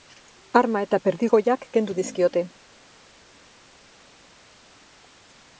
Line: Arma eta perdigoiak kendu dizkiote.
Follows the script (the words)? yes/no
yes